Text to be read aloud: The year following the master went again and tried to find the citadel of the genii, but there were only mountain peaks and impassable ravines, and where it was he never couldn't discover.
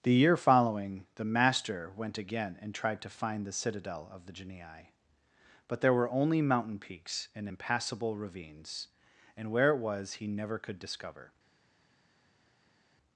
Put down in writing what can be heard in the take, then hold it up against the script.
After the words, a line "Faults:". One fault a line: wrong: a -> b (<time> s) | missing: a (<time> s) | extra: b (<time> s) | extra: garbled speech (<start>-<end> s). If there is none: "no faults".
The year following the master went again and tried to find the citadel of the genii, but there were only mountain peaks and impassable ravines, and where it was he never could discover.
Faults:
wrong: couldn't -> could (10.6 s)